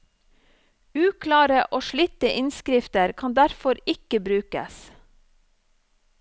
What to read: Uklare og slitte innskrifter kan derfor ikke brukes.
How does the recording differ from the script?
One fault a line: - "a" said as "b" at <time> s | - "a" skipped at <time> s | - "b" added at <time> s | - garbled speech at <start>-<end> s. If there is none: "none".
none